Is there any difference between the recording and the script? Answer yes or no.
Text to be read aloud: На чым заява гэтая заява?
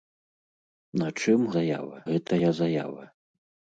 no